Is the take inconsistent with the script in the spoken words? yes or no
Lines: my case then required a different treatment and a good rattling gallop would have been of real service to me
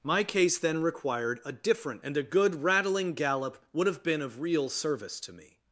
yes